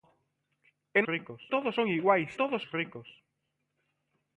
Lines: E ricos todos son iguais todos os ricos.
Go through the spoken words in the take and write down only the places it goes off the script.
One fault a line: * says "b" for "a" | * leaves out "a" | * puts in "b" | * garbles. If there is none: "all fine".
all fine